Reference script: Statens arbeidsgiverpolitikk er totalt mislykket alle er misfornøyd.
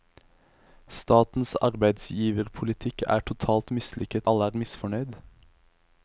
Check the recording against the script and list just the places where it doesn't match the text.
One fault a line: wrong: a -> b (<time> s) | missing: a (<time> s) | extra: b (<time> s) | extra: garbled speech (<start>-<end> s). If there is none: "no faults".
no faults